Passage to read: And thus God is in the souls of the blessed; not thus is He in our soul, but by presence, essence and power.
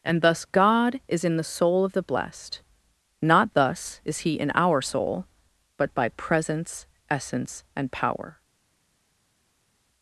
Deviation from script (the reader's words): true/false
true